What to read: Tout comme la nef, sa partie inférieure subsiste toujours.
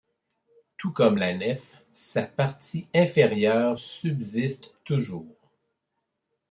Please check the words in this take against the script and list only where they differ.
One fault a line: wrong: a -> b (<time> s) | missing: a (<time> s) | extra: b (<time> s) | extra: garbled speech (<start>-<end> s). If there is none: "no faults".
no faults